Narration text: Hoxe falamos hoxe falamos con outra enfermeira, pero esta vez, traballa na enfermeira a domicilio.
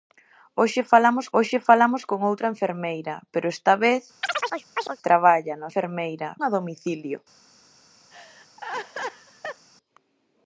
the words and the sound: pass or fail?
fail